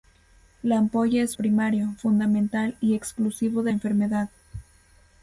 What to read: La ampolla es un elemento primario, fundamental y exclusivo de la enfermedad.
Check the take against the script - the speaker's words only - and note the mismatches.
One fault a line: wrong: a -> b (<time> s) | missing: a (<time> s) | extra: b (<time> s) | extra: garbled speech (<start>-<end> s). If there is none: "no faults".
missing: un elemento (1.4 s)
missing: la (3.7 s)